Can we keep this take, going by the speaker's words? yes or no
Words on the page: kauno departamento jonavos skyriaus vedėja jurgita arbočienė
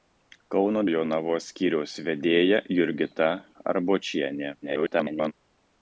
no